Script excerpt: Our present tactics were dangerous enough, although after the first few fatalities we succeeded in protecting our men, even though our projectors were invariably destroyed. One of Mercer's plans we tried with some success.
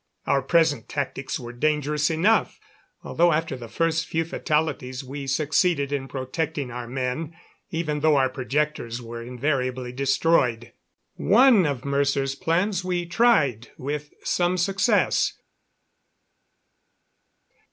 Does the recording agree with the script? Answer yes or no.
yes